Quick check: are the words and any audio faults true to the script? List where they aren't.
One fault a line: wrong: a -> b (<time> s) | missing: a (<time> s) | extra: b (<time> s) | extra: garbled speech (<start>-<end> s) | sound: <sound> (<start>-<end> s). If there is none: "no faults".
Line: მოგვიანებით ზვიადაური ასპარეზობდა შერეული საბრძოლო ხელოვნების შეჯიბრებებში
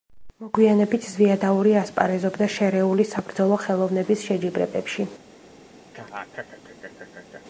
sound: laugh (5.9-7.4 s)